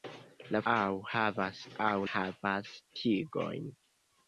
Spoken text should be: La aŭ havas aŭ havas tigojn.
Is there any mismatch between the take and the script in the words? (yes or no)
no